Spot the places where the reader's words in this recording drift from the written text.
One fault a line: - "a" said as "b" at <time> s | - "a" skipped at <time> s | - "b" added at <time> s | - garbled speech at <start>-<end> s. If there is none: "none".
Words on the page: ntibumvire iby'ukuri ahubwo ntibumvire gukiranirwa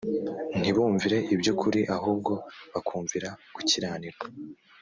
- "ntibumvire" said as "bakumvira" at 2.7 s